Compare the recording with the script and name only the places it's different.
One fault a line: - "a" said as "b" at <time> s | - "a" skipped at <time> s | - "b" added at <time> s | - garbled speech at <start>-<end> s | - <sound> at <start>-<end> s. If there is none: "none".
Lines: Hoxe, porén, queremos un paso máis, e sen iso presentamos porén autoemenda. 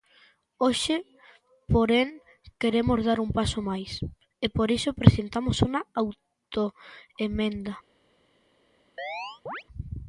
- "dar" added at 3.1 s
- "sen" said as "por" at 4.6 s
- "porén" said as "unha" at 5.7 s
- chirp at 9.0-9.6 s